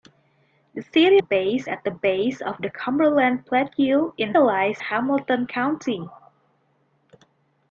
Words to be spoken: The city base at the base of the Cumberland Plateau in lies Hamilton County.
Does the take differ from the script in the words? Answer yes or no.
no